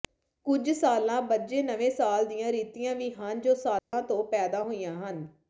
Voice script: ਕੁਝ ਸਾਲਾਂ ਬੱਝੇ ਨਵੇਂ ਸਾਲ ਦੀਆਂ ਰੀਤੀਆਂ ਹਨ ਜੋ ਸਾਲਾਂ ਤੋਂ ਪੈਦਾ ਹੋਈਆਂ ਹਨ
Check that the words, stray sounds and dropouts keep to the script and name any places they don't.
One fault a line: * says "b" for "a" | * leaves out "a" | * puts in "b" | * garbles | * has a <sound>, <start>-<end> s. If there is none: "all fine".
* puts in "ਵੀ"
* has a dropout, 3.8-3.9 s